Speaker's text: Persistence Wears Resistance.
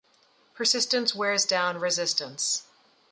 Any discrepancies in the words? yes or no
yes